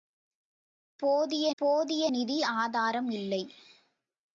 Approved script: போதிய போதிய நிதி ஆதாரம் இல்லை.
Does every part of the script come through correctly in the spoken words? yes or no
yes